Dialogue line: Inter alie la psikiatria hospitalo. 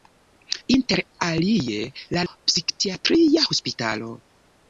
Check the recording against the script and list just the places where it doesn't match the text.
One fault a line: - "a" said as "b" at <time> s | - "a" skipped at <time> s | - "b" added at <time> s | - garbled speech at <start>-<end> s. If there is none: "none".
none